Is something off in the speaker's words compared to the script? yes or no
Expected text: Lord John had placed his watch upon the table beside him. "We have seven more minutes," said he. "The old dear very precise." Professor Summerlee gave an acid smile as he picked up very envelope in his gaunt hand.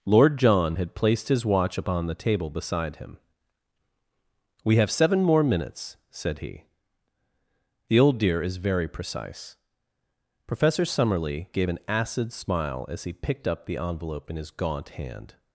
yes